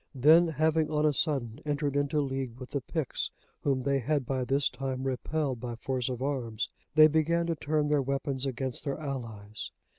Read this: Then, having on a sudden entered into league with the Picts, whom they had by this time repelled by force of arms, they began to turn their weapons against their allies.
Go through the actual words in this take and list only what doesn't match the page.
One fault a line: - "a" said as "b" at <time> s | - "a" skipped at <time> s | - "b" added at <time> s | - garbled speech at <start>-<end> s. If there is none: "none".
none